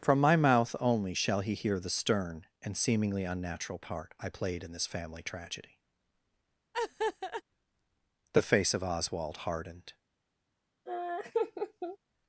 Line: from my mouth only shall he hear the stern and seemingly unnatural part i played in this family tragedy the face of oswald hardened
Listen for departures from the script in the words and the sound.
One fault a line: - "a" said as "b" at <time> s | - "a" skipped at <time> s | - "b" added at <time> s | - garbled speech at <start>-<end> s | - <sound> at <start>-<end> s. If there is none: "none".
- laugh at 6.7-7.4 s
- laugh at 10.9-12.0 s